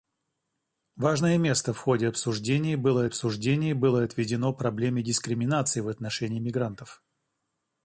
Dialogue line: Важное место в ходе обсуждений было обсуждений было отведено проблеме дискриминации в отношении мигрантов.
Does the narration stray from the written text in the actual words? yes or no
no